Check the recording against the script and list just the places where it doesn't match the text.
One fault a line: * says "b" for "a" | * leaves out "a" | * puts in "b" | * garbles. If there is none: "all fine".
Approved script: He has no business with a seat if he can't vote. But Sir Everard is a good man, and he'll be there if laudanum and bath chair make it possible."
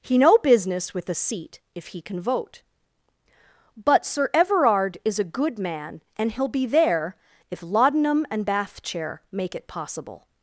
* leaves out "has"
* says "can" for "can't"